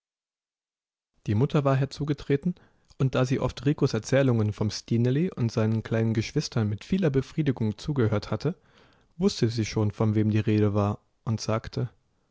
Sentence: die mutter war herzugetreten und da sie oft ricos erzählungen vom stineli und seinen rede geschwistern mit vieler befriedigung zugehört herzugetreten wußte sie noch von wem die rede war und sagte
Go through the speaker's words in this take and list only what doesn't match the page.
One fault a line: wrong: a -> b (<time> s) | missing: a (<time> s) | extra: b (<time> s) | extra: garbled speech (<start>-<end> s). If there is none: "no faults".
wrong: rede -> kleinen (5.8 s)
wrong: herzugetreten -> hatte (8.3 s)
wrong: noch -> schon (9.7 s)